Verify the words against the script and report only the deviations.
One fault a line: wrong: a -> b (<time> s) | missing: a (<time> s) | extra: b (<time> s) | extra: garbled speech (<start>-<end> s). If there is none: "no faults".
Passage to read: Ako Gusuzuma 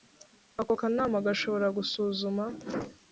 extra: Kanama gashobora (0.8 s)